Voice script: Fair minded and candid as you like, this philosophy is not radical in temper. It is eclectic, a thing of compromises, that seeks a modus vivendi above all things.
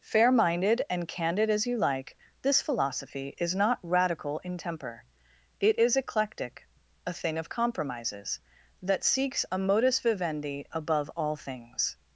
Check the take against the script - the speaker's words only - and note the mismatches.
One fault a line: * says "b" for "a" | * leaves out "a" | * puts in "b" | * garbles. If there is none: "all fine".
all fine